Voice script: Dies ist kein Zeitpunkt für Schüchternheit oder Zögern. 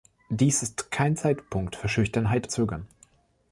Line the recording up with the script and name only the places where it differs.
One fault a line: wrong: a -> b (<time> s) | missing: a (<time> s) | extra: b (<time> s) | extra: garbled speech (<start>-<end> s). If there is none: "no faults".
missing: oder (2.5 s)